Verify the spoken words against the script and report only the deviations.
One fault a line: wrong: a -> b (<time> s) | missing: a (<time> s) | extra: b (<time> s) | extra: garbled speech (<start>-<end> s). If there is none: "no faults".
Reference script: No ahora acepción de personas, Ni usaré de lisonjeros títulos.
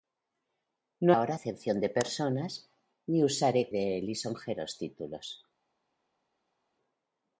no faults